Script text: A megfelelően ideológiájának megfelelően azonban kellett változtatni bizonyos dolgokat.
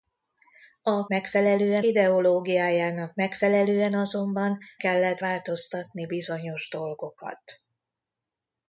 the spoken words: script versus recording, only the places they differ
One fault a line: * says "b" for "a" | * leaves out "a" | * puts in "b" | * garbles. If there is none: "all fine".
all fine